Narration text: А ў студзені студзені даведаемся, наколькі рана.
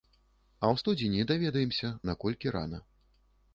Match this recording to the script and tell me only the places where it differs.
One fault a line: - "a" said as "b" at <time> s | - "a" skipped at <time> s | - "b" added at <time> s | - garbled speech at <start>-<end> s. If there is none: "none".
- "студзені" skipped at 1.3 s